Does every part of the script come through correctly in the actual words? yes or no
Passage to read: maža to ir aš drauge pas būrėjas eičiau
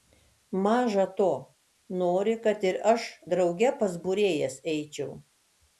no